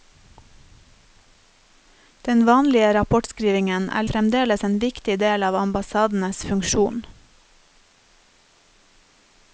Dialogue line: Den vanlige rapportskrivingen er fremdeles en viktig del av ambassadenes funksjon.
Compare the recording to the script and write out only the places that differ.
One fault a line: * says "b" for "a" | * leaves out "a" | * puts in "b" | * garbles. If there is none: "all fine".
all fine